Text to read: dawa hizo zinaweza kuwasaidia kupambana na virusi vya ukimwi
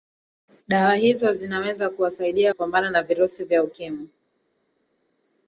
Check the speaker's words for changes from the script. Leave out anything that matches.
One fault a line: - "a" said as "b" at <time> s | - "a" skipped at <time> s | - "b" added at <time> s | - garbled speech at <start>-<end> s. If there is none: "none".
none